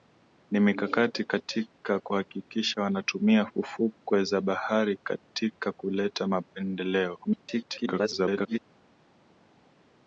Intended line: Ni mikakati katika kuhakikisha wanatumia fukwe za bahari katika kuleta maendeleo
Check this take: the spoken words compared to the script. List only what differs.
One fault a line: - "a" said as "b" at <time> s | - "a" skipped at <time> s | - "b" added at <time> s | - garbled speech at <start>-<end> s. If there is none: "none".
- garbled speech at 7.2-8.6 s